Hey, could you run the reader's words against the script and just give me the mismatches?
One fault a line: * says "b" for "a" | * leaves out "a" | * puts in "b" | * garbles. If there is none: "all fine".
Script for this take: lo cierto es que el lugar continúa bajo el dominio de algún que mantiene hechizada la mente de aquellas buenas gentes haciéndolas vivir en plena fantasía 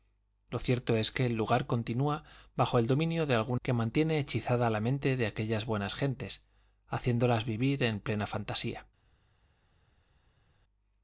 all fine